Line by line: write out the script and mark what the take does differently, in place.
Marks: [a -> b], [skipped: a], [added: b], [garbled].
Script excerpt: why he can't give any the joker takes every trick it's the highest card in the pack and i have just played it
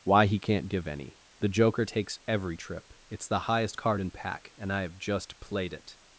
why he can't give any the joker takes every [trick -> trip] it's the highest card in [skipped: the] pack and i have just played it